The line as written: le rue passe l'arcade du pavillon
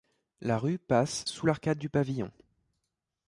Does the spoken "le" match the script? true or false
false